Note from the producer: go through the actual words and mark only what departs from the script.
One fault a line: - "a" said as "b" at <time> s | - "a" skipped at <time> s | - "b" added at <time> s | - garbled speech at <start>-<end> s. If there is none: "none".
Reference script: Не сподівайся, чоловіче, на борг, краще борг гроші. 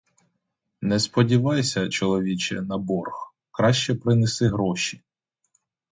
- "борг" said as "принеси" at 3.9 s